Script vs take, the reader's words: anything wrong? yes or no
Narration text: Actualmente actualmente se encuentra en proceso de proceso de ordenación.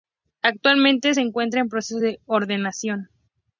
yes